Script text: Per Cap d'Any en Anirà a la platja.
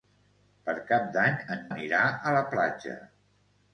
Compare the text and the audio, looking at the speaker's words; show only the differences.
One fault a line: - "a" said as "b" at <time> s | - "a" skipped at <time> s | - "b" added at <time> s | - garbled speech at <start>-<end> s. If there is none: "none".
none